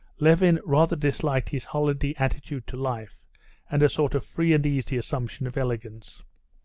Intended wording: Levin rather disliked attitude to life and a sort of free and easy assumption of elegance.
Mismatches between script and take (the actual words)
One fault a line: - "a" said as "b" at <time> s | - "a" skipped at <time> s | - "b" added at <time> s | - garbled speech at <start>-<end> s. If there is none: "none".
- "his holiday" added at 1.5 s